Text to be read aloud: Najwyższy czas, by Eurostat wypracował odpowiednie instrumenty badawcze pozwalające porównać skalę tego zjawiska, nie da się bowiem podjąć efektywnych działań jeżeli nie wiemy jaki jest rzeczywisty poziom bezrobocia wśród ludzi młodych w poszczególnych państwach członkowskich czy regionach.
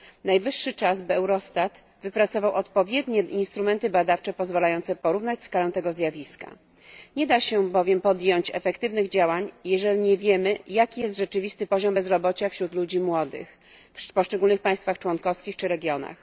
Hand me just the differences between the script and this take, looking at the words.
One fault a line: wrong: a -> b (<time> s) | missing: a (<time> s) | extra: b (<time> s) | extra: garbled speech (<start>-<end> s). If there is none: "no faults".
no faults